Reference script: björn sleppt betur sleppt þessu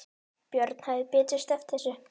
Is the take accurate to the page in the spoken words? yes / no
no